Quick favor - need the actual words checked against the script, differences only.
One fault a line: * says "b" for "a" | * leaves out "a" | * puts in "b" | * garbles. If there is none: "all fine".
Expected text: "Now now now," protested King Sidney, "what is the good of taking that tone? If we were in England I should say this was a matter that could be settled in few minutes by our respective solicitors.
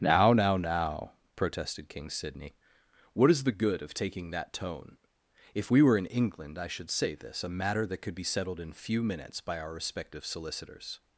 * leaves out "was"